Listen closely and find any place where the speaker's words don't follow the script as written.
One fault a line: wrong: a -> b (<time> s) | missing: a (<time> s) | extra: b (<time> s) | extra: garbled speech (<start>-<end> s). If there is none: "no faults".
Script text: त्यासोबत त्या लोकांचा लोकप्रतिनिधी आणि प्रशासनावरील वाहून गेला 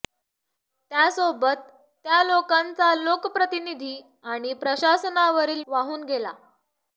no faults